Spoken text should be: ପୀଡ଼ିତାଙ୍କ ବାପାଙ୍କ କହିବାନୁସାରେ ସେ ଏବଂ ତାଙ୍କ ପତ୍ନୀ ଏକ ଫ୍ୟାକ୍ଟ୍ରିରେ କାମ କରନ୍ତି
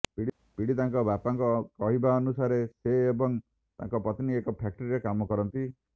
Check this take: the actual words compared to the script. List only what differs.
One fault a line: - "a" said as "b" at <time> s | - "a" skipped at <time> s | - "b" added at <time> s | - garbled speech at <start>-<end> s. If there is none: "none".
none